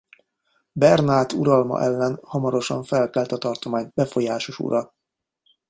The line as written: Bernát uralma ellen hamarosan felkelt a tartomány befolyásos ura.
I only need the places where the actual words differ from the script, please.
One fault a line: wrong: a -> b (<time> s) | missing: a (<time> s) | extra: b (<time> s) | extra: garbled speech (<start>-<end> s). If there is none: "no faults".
no faults